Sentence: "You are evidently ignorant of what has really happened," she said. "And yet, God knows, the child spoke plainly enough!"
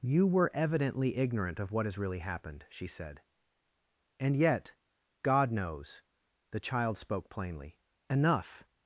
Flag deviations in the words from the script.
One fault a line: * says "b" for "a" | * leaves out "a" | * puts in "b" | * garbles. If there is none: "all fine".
* says "were" for "are"